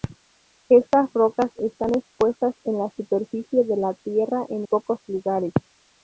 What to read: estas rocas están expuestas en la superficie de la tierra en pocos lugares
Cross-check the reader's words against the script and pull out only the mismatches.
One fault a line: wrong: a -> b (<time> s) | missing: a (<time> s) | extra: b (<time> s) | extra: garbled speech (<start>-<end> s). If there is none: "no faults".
no faults